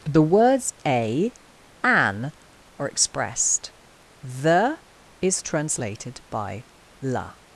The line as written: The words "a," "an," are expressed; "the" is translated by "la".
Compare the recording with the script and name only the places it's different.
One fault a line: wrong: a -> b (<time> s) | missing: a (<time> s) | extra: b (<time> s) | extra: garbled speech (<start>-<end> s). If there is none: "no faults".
no faults